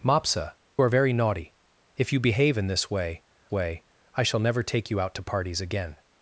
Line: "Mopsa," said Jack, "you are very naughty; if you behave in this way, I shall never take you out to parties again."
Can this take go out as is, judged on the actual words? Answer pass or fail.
fail